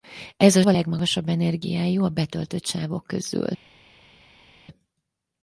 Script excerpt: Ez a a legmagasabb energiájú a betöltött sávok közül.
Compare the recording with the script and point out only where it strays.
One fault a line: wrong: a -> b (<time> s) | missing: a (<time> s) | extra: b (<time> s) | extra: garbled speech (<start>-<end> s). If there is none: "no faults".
no faults